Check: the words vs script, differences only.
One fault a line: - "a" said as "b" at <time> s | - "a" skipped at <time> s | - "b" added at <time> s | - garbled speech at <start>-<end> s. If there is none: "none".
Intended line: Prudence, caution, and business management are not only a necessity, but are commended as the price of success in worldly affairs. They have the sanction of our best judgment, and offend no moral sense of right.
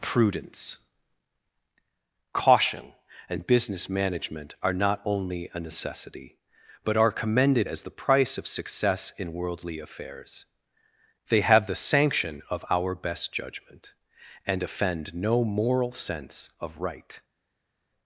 none